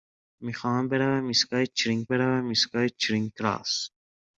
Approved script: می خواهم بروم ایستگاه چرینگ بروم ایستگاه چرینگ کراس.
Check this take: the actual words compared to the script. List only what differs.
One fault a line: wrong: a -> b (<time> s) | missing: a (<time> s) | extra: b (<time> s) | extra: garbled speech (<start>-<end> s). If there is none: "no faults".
no faults